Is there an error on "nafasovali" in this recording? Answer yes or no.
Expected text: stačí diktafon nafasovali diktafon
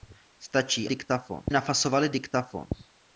no